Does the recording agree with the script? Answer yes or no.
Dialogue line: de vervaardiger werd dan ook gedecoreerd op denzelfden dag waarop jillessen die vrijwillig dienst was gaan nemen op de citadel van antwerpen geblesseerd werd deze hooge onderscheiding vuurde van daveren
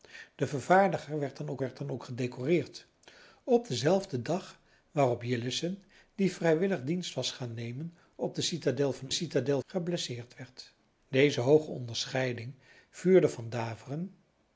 no